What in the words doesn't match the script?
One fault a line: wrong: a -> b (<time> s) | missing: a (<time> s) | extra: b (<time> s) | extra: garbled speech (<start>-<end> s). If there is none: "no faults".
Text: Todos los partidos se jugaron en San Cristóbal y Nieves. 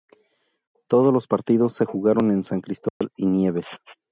no faults